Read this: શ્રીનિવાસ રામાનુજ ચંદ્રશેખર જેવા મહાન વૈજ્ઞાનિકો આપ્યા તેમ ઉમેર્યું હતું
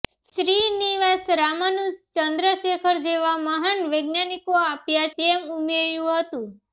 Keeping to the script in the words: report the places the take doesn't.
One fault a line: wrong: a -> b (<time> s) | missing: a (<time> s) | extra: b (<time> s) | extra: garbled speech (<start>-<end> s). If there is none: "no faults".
no faults